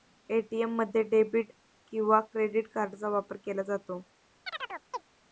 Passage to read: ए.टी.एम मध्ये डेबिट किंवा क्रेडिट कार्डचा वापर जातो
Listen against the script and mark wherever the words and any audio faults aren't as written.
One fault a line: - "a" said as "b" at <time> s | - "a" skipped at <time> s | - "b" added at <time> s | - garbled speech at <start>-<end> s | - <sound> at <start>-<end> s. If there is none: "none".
- "केला" added at 3.4 s
- chirp at 4.5-5.1 s